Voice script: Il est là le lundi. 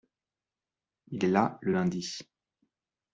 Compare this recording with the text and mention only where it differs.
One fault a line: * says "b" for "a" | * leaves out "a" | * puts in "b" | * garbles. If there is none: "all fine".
all fine